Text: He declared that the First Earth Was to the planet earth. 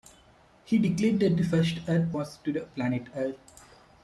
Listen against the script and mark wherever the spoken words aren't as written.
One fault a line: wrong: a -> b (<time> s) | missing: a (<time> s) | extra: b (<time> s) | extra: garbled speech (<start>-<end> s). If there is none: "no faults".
no faults